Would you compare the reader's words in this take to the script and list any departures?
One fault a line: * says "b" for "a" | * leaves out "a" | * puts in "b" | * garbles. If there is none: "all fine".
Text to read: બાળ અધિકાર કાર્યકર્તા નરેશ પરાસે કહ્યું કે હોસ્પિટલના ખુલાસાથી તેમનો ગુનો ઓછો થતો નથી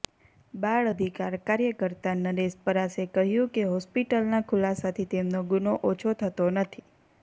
all fine